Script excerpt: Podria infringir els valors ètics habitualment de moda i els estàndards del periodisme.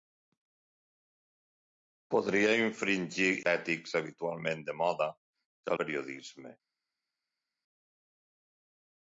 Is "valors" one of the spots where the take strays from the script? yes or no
yes